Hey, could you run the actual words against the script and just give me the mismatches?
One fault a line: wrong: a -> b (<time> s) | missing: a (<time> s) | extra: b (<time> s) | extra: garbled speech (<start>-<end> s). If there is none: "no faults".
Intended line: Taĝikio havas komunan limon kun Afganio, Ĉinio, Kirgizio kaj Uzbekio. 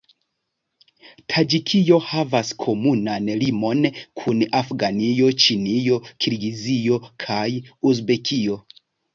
no faults